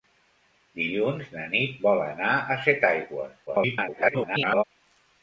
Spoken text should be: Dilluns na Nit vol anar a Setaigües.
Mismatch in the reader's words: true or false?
true